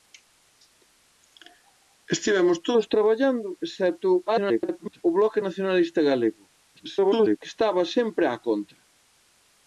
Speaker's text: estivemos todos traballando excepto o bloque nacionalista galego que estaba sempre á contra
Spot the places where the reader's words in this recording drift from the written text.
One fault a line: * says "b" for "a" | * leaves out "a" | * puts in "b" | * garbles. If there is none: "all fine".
* garbles
* garbles